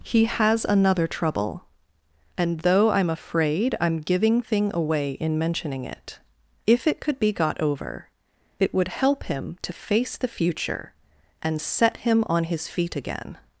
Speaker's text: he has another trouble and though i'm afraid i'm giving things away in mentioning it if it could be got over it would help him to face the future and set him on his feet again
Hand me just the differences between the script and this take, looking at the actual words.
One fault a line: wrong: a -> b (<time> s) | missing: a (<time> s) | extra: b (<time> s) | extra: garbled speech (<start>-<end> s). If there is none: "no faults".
wrong: things -> thing (4.4 s)